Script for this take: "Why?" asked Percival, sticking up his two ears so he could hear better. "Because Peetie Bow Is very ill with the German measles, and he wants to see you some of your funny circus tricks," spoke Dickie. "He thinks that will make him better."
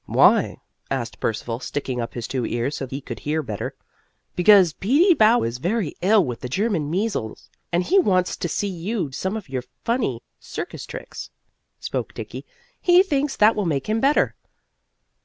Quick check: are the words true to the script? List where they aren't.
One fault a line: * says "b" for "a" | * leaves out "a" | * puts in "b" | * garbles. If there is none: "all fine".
all fine